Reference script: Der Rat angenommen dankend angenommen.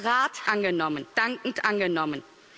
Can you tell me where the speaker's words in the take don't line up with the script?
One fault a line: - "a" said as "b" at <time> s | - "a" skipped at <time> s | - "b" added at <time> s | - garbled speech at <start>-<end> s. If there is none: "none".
none